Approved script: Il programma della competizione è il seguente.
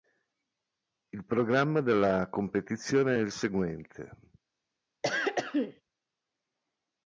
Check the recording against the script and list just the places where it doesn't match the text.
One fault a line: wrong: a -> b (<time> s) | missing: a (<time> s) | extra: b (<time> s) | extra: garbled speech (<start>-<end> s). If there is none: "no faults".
no faults